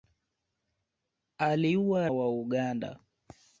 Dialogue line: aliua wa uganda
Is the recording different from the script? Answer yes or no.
no